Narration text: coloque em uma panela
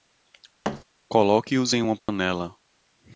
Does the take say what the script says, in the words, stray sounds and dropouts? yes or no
no